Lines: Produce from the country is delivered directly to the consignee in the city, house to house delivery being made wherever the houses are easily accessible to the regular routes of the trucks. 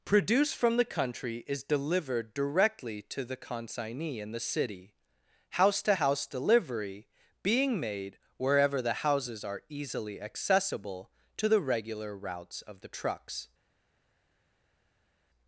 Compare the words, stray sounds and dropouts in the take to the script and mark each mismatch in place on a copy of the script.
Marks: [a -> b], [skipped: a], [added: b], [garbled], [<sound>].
Produce from the country is delivered directly to the consignee in the city, house to house delivery being made wherever the houses are easily accessible to the regular routes of the trucks.